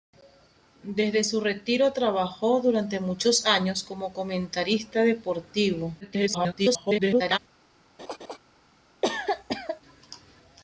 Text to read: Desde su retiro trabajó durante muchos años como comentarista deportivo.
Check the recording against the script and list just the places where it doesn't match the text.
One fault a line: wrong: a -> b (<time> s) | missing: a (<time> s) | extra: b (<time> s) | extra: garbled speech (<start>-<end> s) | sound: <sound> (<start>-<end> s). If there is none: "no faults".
extra: garbled speech (6.0-7.4 s)
sound: laugh (8.0-8.4 s)
sound: cough (9.0-9.8 s)